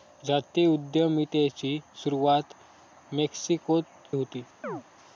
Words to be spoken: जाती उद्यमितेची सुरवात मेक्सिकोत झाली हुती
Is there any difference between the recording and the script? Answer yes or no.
yes